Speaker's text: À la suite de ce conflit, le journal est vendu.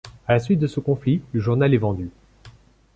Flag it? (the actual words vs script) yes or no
no